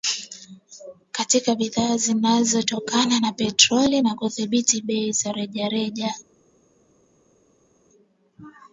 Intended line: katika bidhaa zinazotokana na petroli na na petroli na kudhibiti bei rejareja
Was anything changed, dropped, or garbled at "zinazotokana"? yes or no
no